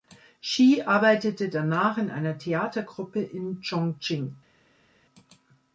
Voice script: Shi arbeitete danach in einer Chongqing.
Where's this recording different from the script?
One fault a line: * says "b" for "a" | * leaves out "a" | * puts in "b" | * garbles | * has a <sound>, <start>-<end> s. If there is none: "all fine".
* puts in "Theatergruppe in"